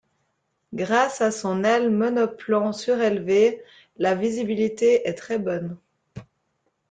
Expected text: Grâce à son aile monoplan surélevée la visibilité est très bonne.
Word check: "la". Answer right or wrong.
right